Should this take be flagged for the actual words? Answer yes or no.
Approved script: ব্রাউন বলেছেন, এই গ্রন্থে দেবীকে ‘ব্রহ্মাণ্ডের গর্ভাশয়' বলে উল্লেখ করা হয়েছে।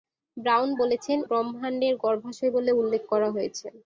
yes